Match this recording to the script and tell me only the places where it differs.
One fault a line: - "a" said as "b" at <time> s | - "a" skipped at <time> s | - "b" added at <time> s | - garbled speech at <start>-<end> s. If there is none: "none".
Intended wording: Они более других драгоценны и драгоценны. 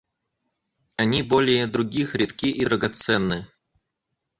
- "драгоценны" said as "редки" at 2.1 s